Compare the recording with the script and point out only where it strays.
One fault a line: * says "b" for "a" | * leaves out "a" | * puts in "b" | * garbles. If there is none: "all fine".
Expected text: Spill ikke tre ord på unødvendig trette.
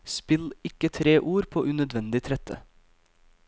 all fine